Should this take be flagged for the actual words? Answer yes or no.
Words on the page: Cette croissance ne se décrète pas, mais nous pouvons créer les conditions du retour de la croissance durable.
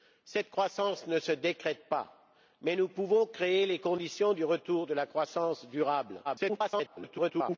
yes